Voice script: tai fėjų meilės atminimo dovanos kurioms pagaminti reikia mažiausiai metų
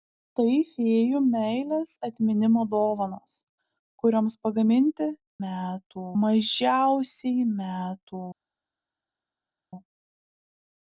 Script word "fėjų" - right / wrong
right